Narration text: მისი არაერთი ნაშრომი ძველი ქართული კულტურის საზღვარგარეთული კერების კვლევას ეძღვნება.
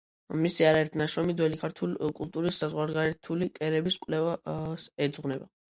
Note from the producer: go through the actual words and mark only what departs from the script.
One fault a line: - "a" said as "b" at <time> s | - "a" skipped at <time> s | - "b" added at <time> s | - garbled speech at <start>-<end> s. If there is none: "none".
none